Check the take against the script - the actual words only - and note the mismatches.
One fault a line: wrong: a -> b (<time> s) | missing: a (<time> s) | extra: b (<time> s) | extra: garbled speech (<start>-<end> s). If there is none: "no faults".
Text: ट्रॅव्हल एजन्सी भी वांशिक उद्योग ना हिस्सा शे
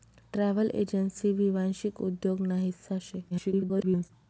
extra: garbled speech (3.3-4.1 s)